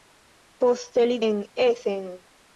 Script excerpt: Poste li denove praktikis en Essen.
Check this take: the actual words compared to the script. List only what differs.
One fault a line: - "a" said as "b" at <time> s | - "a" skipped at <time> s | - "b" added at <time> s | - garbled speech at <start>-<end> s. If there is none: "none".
- "denove praktikis" skipped at 1.2 s